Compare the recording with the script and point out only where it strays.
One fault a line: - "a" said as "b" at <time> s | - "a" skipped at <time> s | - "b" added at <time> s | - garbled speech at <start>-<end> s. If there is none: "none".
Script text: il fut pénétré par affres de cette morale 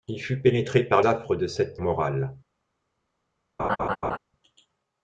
none